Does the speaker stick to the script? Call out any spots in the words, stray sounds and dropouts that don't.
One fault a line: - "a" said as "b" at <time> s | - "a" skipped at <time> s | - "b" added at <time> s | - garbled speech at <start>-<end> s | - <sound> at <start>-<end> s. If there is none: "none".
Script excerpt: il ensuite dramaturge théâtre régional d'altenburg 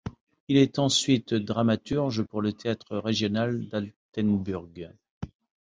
- "est" added at 0.6 s
- "pour le" added at 2.2 s